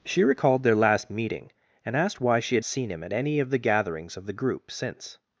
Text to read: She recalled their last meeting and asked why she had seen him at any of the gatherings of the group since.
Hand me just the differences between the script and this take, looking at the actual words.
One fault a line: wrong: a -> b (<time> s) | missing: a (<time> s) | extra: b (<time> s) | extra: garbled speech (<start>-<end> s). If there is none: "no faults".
no faults